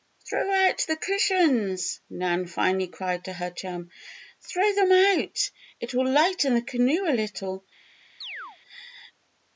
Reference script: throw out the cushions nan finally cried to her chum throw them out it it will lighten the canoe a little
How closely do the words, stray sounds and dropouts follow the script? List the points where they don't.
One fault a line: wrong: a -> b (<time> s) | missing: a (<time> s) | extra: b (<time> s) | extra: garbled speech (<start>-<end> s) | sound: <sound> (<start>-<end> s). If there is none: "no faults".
missing: it (5.9 s)
sound: chirp (8.2-8.6 s)